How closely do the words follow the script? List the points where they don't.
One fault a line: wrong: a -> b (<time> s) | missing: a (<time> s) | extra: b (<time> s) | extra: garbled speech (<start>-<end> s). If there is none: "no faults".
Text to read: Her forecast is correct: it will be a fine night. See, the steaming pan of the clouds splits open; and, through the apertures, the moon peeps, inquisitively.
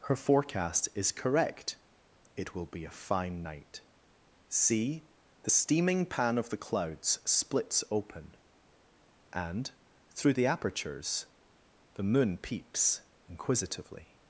no faults